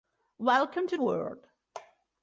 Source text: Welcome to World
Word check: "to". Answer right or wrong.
right